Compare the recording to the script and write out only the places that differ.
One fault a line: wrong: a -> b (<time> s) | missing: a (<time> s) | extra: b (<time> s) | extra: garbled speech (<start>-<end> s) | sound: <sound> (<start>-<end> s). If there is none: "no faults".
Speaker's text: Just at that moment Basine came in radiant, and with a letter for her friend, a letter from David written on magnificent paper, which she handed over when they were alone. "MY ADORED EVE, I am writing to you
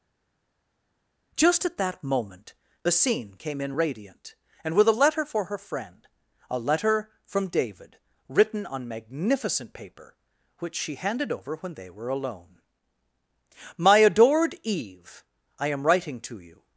no faults